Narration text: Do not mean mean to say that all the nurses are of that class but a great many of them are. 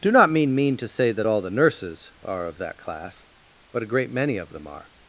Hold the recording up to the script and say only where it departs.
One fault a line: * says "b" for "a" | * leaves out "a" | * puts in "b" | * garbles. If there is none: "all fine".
all fine